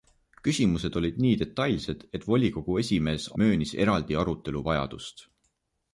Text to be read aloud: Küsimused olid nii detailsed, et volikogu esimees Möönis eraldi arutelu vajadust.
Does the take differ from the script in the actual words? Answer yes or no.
no